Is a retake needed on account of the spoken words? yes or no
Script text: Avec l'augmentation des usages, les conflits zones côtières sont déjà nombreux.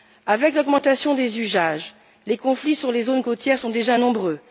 yes